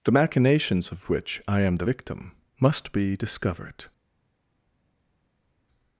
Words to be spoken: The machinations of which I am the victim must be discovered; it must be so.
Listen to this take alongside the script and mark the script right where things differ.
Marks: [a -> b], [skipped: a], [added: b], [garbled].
The machinations of which I am the victim must be discovered; [skipped: it must be so.]